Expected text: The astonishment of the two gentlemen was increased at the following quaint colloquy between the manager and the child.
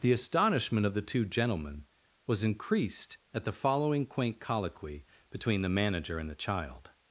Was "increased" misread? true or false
false